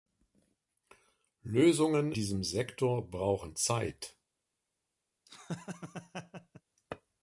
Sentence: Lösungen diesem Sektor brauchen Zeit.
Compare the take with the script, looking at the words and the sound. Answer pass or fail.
fail